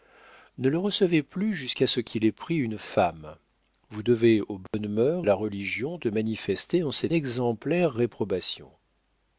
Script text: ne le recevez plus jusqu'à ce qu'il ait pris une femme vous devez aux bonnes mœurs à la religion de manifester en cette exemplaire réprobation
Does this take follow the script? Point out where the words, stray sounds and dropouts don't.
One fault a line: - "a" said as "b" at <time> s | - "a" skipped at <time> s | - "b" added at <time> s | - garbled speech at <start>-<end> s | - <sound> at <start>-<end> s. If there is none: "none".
- dropout at 4.7-4.7 s